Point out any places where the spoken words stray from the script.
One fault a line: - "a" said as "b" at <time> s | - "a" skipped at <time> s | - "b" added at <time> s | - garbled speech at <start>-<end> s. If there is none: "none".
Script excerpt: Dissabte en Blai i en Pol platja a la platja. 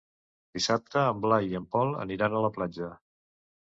- "platja" said as "aniran" at 2.1 s